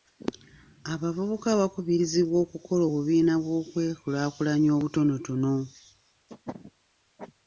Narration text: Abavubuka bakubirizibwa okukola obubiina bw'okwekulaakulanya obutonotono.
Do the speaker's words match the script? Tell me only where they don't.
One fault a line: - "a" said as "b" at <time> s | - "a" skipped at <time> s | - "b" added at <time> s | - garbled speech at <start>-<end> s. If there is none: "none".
none